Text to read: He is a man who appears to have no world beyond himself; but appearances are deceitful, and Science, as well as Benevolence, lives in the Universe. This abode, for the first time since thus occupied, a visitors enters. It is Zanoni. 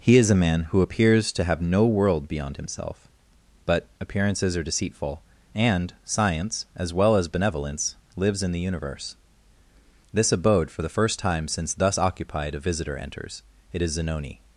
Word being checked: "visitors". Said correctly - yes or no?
no